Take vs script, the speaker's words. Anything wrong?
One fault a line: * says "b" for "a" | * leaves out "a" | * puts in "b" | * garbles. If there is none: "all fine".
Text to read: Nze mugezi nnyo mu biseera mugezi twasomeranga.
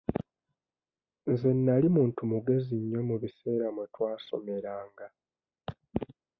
* puts in "nali muntu"
* says "mwe" for "mugezi"